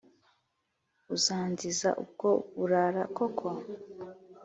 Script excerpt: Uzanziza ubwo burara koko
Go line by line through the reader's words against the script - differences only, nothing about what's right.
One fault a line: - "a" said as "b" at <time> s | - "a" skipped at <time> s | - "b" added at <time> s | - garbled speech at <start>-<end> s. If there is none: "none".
none